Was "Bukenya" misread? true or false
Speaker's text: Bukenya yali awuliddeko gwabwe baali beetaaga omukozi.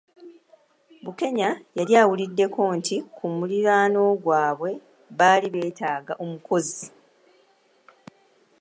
false